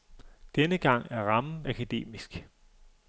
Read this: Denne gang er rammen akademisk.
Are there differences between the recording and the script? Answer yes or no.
no